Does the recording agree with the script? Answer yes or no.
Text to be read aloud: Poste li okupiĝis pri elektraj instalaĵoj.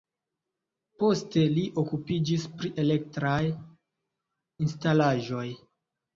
yes